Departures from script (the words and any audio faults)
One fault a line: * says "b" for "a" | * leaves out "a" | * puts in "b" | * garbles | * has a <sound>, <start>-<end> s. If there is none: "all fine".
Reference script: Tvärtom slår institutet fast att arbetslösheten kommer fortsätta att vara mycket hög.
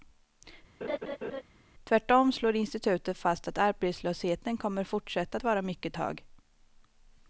* has a laugh, 0.8-1.4 s